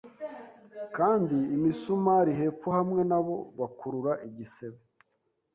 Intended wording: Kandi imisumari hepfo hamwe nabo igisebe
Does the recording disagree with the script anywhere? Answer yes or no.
yes